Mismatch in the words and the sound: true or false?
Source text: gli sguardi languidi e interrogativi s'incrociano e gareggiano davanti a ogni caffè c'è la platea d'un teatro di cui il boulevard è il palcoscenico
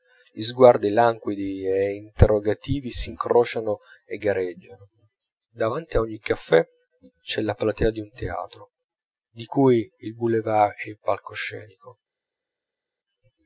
false